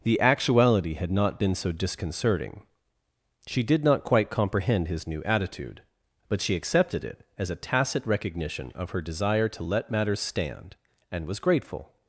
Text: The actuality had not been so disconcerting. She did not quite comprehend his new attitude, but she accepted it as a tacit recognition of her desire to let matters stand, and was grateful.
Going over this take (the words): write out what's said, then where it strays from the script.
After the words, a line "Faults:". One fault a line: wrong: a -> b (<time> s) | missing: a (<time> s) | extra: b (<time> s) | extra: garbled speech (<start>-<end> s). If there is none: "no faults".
The actuality had not been so disconcerting. She did not quite comprehend his new attitude, but she accepted it as a tacit recognition of her desire to let matters stand, and was grateful.
Faults:
no faults